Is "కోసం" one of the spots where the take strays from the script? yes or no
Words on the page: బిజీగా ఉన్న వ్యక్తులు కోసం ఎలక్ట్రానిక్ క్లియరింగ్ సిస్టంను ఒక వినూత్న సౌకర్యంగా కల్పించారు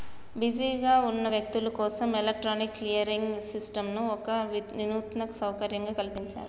no